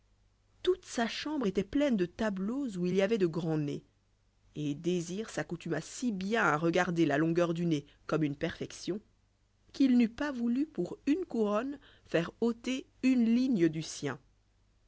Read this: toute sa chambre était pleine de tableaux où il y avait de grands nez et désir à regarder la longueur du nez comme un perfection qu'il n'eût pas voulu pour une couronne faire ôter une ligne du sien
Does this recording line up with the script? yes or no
no